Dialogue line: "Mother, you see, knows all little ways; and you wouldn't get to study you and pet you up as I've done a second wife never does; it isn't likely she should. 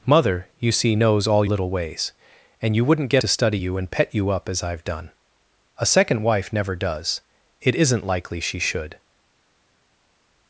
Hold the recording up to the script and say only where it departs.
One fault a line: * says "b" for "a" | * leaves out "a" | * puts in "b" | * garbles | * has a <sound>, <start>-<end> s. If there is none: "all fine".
all fine